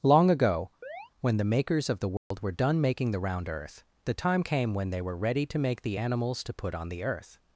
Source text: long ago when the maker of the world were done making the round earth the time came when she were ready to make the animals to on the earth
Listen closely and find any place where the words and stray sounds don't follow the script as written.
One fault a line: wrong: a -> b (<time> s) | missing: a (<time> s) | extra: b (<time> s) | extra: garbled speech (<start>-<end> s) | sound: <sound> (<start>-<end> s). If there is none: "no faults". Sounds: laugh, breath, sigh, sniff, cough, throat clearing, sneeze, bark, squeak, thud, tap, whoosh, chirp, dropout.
sound: chirp (0.8-1.1 s)
wrong: maker -> makers (1.4 s)
sound: dropout (2.2-2.3 s)
wrong: she -> they (4.9 s)
extra: put (6.5 s)